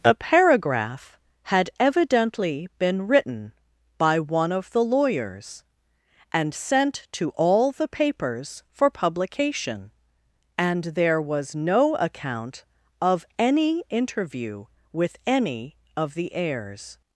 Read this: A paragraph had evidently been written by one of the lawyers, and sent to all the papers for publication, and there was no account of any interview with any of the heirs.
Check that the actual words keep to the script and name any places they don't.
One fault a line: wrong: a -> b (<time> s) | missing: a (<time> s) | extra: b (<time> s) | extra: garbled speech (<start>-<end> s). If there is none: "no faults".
no faults